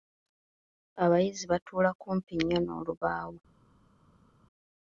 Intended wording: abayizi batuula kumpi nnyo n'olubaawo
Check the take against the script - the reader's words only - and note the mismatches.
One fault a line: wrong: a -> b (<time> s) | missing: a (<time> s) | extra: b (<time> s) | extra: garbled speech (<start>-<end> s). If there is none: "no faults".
no faults